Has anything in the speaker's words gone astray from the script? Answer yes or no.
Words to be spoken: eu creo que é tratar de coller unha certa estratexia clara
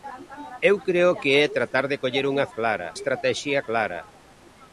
yes